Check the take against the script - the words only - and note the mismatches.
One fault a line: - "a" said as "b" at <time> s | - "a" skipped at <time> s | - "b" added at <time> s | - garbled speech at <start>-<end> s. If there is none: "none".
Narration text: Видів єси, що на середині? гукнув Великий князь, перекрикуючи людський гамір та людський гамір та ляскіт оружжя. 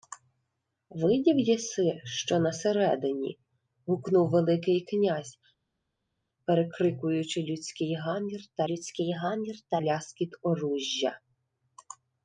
none